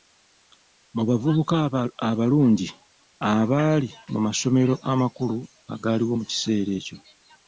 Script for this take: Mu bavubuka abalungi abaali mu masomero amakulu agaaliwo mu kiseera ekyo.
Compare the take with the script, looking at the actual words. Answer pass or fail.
pass